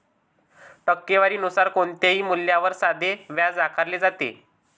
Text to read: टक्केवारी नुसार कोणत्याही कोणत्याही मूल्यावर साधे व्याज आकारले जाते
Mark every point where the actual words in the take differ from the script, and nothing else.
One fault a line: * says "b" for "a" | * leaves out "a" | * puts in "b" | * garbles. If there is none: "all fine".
* leaves out "कोणत्याही"